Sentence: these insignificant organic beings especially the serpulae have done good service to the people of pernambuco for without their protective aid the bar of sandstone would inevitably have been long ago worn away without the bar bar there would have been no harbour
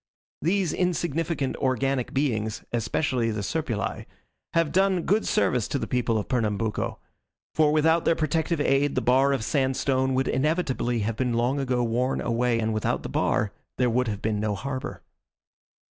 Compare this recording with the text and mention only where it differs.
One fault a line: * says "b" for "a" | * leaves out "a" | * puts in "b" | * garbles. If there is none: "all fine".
* puts in "and"
* leaves out "bar"